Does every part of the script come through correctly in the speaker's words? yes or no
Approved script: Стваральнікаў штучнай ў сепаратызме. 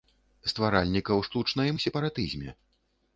yes